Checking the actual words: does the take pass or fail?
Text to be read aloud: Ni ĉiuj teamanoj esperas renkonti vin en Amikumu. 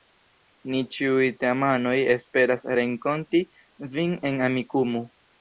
pass